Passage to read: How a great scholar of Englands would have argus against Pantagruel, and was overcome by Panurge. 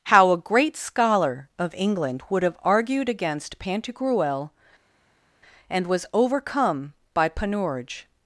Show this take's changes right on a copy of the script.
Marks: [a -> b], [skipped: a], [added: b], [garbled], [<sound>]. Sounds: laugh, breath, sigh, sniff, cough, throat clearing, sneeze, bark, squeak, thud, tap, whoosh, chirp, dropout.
How a great scholar of [Englands -> England] would have [argus -> argued] against Pantagruel, and was overcome by Panurge.